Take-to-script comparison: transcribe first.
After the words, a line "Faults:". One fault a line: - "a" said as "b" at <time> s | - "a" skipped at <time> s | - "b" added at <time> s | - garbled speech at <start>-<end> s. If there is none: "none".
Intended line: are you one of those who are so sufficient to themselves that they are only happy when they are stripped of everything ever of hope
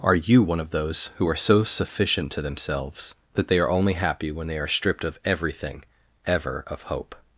are you one of those who are so sufficient to themselves that they are only happy when they are stripped of everything ever of hope
Faults:
none